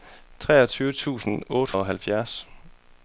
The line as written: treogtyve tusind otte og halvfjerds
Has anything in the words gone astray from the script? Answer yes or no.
no